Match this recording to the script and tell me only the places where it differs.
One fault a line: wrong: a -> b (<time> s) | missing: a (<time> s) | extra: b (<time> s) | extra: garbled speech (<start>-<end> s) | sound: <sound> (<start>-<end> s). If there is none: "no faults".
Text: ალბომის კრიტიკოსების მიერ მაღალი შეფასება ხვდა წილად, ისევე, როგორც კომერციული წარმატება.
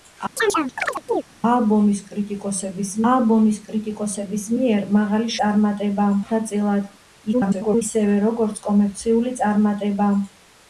sound: chirp (0.4-1.2 s)
extra: ალბომის კრიტიკოსების (3.1 s)
wrong: შეფასება -> წარმატება (5.4 s)
extra: garbled speech (7.3-7.8 s)